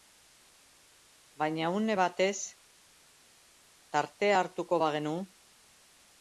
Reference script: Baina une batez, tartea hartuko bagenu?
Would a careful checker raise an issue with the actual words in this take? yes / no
no